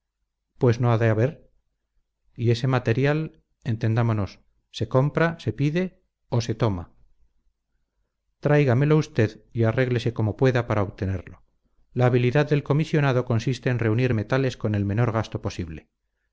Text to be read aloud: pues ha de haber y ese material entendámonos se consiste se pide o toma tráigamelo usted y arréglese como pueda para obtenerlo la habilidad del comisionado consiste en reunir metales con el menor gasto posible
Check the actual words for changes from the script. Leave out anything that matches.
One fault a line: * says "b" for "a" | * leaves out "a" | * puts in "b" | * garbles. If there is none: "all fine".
* puts in "no"
* says "compra" for "consiste"
* puts in "se"